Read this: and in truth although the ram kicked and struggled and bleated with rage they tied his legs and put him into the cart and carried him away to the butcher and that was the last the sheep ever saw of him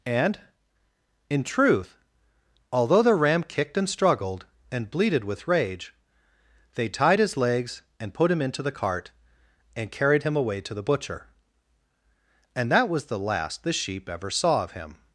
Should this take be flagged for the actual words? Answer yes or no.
no